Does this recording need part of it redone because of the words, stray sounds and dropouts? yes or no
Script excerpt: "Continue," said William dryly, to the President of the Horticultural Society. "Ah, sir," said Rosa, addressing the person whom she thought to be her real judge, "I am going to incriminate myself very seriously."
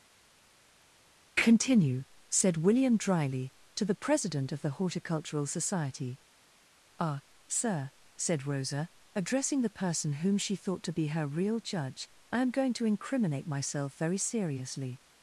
no